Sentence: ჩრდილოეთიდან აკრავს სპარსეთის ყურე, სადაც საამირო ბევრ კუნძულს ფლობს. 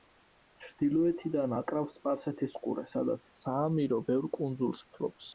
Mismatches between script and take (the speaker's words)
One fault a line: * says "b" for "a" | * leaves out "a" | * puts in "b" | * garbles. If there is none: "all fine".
all fine